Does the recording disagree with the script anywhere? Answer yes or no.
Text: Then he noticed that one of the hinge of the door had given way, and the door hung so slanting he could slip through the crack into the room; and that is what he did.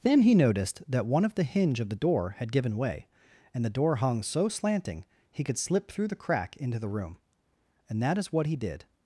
no